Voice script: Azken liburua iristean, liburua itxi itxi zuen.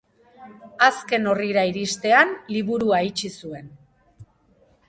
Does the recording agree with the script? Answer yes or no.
no